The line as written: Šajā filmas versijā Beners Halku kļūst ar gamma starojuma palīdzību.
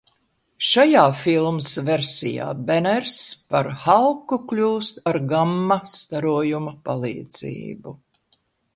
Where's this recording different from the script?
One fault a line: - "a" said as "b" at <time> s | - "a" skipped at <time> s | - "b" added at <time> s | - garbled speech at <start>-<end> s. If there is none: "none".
- "par" added at 3.5 s